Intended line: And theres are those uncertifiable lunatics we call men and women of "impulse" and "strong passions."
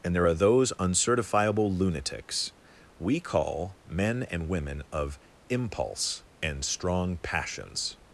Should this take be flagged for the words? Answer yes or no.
yes